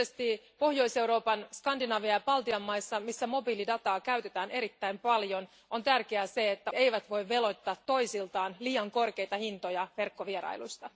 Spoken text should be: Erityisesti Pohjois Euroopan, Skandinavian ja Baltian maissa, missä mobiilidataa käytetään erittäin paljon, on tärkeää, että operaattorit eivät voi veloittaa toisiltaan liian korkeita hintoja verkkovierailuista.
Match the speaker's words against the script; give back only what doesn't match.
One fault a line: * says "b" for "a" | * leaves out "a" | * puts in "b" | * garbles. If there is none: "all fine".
* leaves out "operaattorit"